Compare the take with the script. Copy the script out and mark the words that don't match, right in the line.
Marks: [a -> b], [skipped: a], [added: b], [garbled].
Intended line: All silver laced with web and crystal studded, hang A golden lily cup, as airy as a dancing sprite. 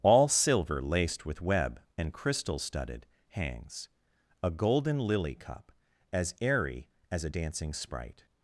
All silver laced with web and crystal studded, [hang -> hangs] A golden lily cup, as airy as a dancing sprite.